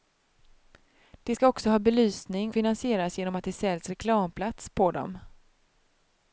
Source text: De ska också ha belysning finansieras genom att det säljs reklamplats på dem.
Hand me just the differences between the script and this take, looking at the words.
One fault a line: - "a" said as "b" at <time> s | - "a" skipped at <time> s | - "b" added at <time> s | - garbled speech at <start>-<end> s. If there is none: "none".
none